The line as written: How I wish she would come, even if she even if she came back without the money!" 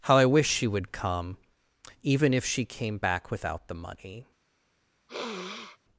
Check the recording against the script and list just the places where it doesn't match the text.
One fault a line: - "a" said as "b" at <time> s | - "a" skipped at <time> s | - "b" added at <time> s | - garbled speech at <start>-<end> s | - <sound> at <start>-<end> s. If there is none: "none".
- "even if she" skipped at 2.6 s
- sniff at 5.1-5.8 s